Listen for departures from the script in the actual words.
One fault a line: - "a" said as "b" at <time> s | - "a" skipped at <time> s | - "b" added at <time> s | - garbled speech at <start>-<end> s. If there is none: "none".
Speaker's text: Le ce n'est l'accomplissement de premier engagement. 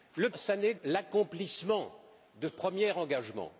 none